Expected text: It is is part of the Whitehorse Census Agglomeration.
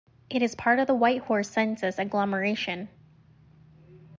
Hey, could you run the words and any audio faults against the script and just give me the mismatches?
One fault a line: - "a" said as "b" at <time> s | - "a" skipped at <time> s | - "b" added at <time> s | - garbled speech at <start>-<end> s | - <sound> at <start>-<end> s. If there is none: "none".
- "is" skipped at 0.6 s